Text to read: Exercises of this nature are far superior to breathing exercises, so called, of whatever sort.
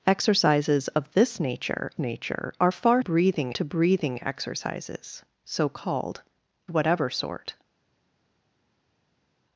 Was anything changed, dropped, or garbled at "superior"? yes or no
yes